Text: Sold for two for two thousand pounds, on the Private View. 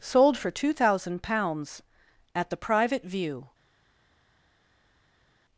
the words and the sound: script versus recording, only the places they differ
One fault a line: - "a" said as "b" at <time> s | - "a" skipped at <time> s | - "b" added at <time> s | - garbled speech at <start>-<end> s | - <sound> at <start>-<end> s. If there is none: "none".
- "for two" skipped at 0.7 s
- "on" said as "at" at 2.3 s